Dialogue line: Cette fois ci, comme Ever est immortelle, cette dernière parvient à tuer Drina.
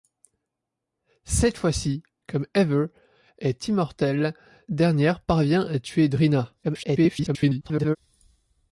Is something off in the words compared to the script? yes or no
yes